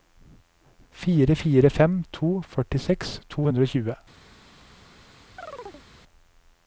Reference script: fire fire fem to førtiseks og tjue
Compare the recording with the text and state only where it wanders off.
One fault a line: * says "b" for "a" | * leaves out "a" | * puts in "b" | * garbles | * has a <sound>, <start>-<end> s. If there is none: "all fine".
* puts in "to hundre"
* has a chirp, 5.4-5.9 s